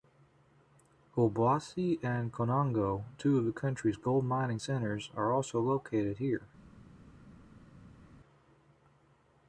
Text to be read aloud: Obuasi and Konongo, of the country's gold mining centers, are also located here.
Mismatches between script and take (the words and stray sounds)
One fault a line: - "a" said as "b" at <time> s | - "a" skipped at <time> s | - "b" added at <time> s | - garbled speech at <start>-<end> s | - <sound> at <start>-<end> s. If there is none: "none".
- "two" added at 3.2 s